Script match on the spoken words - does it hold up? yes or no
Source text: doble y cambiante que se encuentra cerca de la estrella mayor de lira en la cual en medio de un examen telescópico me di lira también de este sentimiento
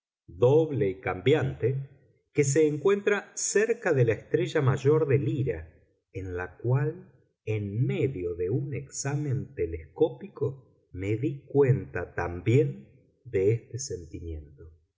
no